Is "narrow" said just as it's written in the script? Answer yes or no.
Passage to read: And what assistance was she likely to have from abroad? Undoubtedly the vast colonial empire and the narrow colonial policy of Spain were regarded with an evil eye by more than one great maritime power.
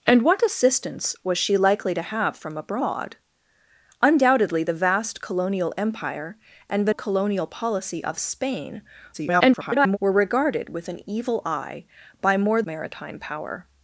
no